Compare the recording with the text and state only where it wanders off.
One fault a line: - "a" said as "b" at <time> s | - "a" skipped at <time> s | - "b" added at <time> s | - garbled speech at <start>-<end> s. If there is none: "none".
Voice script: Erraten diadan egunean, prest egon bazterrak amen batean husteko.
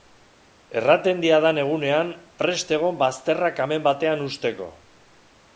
none